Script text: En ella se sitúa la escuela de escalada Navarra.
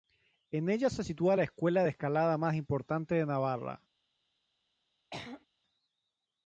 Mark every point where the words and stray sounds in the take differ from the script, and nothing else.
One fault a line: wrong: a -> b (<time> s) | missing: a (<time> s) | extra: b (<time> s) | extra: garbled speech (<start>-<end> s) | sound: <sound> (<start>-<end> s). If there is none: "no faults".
extra: más importante de (2.4 s)
sound: throat clearing (5.1-5.5 s)